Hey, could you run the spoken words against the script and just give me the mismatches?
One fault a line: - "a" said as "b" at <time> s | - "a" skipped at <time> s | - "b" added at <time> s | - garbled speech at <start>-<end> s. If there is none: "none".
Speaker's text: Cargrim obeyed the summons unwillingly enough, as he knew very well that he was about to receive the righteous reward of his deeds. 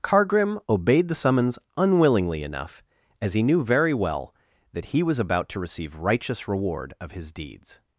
- "the" skipped at 6.0 s